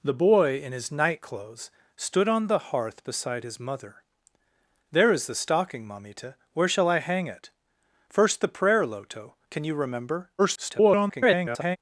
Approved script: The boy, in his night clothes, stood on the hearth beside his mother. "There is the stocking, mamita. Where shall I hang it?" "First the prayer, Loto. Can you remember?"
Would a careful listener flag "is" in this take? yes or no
no